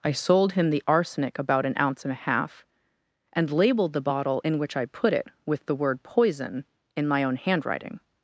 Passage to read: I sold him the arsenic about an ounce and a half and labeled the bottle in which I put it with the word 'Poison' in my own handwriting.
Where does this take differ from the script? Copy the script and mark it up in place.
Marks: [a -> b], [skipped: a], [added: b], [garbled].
I sold him the arsenic about an ounce and a half and labeled the bottle in which I put it with the word 'Poison' in my own handwriting.